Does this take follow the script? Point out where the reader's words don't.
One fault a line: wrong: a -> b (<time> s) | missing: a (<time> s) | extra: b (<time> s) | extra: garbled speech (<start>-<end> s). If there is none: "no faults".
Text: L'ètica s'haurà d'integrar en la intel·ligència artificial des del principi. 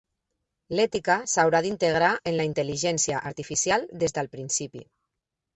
no faults